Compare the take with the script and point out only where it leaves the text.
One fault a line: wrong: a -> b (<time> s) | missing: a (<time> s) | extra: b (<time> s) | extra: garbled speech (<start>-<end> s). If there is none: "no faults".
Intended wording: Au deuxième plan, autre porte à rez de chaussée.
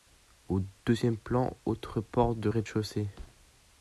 wrong: à -> de (2.4 s)